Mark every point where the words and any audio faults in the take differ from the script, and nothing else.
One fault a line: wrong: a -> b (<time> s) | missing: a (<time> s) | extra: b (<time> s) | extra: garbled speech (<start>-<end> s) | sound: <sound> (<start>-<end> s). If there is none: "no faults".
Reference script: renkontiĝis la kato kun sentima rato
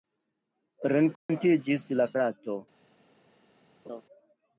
sound: dropout (1.2-1.3 s)
missing: kato kun sentima (2.1 s)
sound: laugh (3.8-4.0 s)